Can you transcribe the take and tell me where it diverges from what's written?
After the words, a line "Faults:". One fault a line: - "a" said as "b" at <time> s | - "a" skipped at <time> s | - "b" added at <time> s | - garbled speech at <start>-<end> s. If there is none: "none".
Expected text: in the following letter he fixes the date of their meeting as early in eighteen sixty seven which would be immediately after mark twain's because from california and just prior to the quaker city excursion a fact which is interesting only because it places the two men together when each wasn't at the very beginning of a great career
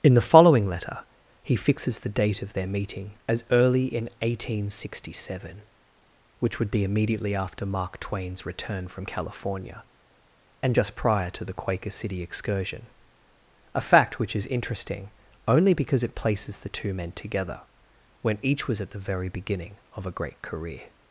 in the following letter he fixes the date of their meeting as early in eighteen sixty seven which would be immediately after mark twain's return from california and just prior to the quaker city excursion a fact which is interesting only because it places the two men together when each was at the very beginning of a great career
Faults:
- "because" said as "return" at 8.4 s
- "wasn't" said as "was" at 18.7 s